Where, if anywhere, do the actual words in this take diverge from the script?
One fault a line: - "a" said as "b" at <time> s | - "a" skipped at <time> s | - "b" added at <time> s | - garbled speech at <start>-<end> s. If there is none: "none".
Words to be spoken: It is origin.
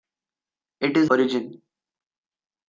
none